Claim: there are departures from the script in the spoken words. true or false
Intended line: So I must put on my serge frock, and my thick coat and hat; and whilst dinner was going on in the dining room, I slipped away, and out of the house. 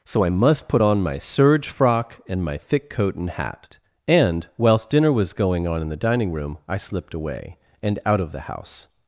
false